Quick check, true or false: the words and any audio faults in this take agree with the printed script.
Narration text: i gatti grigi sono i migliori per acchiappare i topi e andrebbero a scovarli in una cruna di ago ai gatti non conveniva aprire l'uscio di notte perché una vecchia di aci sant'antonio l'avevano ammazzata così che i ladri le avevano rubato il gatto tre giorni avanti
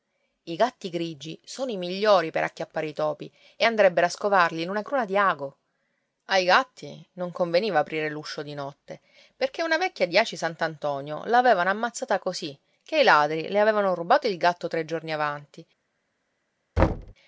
false